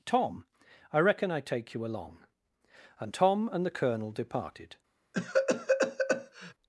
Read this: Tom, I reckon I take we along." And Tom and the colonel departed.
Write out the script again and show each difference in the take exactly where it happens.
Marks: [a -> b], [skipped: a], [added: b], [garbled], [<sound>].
Tom, I reckon I take [we -> you] along." And Tom and the colonel departed. [cough]